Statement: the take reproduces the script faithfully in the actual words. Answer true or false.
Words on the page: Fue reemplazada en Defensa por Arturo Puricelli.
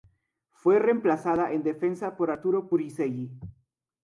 true